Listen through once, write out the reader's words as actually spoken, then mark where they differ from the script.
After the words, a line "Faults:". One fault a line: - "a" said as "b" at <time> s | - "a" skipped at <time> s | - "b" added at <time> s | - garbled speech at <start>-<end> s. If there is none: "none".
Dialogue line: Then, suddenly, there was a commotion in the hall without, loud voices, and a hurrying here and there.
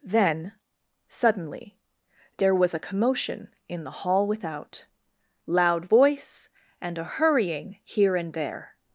Then, suddenly, there was a commotion in the hall without, loud voice, and a hurrying here and there.
Faults:
- "voices" said as "voice" at 5.8 s